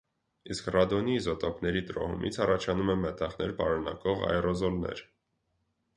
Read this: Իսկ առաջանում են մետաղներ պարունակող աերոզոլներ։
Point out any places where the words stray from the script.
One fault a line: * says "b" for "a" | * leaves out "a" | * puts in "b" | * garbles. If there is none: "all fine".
* puts in "ռադոնի իզոտոպների տրոհումից"